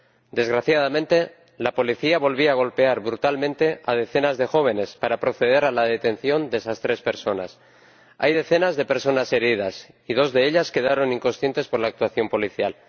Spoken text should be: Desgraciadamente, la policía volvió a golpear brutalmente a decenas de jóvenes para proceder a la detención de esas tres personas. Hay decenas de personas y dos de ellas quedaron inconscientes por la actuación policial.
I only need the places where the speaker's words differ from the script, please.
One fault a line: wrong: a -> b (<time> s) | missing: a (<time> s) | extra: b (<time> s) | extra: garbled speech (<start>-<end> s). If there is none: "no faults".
extra: heridas (9.3 s)